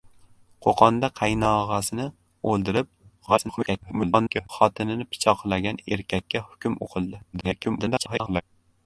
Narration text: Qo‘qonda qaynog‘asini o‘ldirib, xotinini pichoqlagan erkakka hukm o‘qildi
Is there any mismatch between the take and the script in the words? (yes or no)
yes